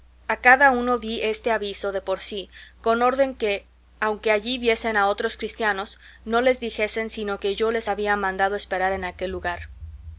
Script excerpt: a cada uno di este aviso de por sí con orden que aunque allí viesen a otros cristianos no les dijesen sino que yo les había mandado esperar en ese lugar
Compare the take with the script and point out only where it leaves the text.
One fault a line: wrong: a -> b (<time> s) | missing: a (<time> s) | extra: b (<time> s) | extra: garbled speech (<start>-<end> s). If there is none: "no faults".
wrong: ese -> aquel (9.0 s)